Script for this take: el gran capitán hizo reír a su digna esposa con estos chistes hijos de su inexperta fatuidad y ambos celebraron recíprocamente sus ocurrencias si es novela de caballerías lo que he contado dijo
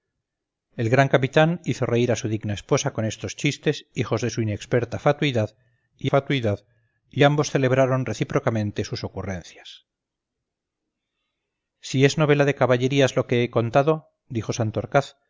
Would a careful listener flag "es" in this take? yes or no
no